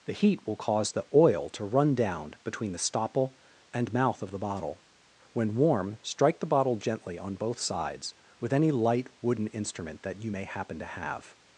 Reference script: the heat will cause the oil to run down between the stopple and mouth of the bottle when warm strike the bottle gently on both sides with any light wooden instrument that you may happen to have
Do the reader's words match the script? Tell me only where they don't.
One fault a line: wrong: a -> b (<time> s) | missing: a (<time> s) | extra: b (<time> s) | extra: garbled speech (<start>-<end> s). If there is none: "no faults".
no faults